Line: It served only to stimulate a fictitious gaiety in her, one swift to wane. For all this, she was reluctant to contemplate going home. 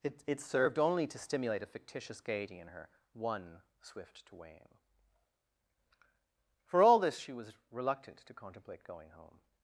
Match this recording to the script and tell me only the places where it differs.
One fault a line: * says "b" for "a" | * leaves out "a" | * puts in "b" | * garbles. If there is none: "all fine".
* puts in "it"